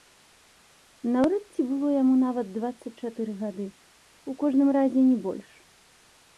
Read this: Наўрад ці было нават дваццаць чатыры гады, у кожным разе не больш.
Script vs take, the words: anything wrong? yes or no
yes